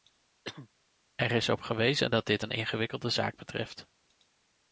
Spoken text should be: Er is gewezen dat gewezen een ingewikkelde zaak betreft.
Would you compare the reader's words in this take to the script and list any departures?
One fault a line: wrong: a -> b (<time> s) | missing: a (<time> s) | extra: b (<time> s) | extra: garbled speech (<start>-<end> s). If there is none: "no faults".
extra: op (1.5 s)
wrong: gewezen -> dit (2.3 s)